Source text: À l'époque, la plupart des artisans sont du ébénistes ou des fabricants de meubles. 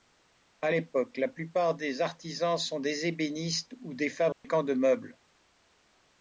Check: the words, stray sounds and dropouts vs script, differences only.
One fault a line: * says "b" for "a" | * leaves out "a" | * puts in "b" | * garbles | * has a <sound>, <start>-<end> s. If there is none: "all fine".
* says "des" for "du"
* has a dropout, 4.3-4.4 s